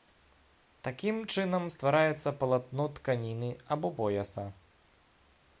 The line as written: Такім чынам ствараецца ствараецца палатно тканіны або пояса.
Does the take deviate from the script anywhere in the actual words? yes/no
yes